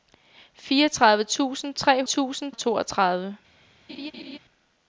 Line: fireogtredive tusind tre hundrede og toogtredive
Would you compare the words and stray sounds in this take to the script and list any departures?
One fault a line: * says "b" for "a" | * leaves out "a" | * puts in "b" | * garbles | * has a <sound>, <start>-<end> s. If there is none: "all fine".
* says "tusind" for "hundrede"
* has a laugh, 3.9-4.4 s